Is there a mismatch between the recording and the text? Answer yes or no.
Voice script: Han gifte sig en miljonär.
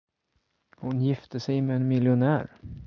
yes